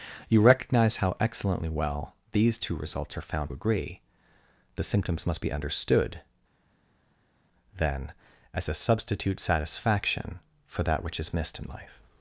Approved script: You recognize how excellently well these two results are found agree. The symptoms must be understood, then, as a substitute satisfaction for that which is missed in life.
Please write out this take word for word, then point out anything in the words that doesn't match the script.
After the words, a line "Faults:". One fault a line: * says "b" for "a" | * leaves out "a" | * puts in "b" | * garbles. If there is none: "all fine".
You recognize how excellently well these two results are found agree. The symptoms must be understood, then, as a substitute satisfaction for that which is missed in life.
Faults:
all fine